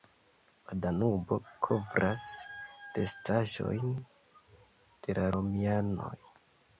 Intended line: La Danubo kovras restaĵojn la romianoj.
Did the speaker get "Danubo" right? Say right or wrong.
right